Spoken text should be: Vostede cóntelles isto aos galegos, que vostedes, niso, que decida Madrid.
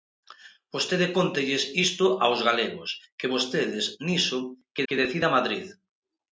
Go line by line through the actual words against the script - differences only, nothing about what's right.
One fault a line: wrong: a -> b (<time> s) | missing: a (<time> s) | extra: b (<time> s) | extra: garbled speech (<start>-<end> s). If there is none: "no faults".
extra: que (4.9 s)